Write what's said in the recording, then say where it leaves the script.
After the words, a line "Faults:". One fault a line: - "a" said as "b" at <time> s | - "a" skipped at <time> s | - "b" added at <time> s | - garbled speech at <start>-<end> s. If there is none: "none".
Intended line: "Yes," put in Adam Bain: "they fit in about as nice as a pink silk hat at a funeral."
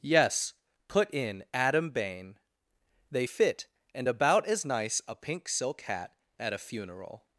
"Yes," put in Adam Bain: "they fit and about as nice a pink silk hat at a funeral."
Faults:
- "in" said as "and" at 3.9 s
- "as" skipped at 5.0 s